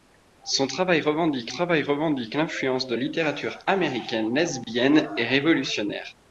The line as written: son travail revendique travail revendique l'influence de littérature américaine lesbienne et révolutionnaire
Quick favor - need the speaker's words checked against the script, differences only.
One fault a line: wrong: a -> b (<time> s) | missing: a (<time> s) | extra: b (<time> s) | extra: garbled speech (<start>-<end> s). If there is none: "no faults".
no faults